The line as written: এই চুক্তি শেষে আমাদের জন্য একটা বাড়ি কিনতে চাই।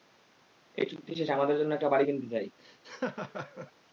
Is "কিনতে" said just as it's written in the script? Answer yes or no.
yes